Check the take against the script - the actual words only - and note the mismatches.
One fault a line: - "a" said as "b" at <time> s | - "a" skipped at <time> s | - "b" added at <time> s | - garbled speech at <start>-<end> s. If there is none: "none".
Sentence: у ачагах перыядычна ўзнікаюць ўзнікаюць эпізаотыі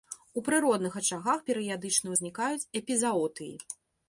- "прыродных" added at 0.5 s
- "ўзнікаюць" skipped at 2.7 s